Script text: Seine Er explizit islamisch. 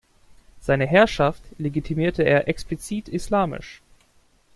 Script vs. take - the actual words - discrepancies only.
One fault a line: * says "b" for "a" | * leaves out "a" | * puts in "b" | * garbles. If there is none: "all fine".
* puts in "Herrschaft legitimierte"